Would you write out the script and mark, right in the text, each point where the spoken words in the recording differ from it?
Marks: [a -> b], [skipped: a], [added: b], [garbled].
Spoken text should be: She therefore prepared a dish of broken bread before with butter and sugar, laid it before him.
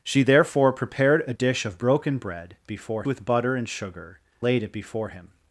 She therefore prepared a dish of broken bread before with butter and sugar, laid it before him.